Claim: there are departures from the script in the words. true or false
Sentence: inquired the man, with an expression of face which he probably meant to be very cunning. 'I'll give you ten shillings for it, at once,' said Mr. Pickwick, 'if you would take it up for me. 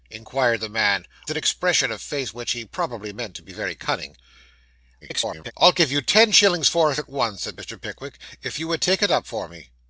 true